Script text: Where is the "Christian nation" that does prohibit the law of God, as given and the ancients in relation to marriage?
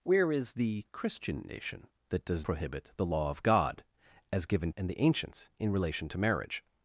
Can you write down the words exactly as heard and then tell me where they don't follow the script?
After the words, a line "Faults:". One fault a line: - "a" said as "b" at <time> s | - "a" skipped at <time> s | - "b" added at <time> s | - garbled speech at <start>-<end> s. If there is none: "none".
Where is the "Christian nation" that does prohibit the law of God, as given and the ancients in relation to marriage?
Faults:
none